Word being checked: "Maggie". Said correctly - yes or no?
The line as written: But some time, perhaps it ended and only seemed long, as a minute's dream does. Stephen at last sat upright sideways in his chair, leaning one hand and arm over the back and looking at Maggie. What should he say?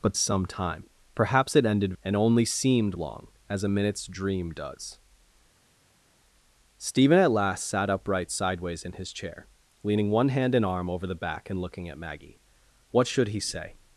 yes